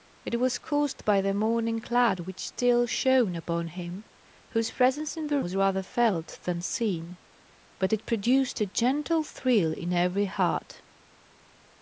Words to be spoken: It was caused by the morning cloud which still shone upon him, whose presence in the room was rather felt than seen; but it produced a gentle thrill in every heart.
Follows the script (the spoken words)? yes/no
no